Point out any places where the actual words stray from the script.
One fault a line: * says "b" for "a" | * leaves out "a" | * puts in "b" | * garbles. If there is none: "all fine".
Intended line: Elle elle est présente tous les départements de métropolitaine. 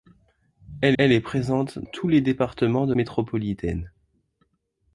all fine